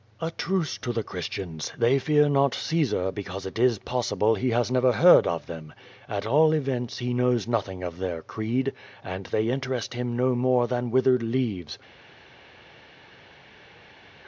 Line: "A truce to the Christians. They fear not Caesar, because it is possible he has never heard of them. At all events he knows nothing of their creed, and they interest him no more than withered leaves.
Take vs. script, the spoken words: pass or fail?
pass